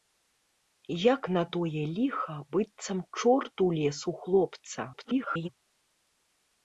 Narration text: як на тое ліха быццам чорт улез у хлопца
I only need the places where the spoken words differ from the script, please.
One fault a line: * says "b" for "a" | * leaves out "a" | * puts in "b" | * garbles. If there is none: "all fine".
* garbles